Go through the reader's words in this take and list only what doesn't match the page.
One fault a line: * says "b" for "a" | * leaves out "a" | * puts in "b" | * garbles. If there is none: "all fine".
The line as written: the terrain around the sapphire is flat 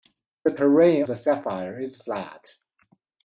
* leaves out "around"